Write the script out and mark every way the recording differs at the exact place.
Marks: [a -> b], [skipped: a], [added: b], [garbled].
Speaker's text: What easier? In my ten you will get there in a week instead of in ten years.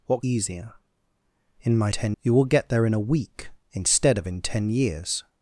What easier? In my ten you will get there in a week instead of in ten years.